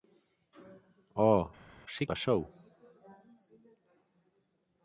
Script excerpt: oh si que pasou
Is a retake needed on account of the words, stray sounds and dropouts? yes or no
yes